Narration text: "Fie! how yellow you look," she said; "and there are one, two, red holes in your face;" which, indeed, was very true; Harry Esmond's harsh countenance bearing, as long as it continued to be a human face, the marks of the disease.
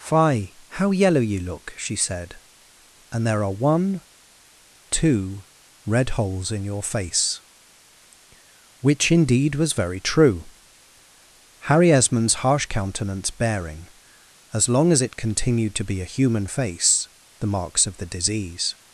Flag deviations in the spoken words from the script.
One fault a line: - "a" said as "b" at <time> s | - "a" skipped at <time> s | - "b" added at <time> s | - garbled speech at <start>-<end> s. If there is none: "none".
none